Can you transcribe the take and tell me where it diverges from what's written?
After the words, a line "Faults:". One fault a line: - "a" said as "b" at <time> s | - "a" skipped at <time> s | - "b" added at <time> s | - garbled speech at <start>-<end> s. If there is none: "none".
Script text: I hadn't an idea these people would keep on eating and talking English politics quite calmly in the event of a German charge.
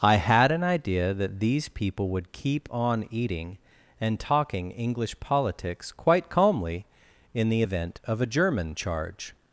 I had an idea that these people would keep on eating and talking English politics quite calmly in the event of a German charge.
Faults:
- "hadn't" said as "had" at 0.1 s
- "that" added at 1.1 s